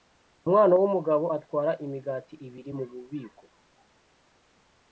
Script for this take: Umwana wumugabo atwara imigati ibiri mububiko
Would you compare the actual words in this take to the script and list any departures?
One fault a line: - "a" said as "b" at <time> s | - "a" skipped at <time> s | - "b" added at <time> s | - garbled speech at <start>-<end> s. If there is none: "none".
none